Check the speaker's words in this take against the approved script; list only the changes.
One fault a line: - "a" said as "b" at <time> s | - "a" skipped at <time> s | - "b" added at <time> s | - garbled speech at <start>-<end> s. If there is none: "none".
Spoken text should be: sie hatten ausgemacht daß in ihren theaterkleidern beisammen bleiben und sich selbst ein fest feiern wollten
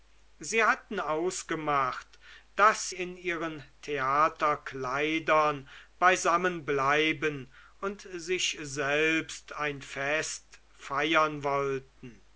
none